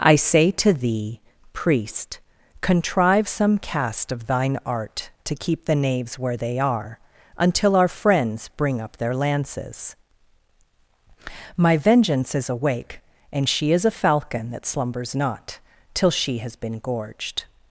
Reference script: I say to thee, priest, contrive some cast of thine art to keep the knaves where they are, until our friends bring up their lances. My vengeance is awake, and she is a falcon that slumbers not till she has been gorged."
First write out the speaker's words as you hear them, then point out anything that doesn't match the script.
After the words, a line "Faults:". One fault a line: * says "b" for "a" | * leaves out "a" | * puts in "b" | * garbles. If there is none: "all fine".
I say to thee, priest, contrive some cast of thine art to keep the knaves where they are, until our friends bring up their lances. My vengeance is awake, and she is a falcon that slumbers not till she has been gorged."
Faults:
all fine